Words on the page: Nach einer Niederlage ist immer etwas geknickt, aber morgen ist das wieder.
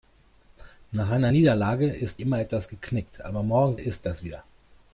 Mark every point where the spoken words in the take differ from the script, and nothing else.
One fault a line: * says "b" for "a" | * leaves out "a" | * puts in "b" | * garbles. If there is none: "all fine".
all fine